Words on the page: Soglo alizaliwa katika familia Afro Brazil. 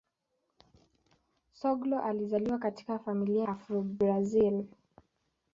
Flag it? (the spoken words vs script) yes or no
no